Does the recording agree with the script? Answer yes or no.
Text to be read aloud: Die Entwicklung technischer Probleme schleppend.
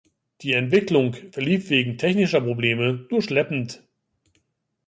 no